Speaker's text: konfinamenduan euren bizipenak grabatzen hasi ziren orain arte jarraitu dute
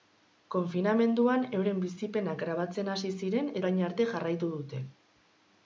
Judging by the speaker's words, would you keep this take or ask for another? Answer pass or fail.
pass